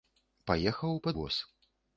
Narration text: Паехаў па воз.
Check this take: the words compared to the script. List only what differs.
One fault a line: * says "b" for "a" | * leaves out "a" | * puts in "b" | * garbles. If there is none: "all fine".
all fine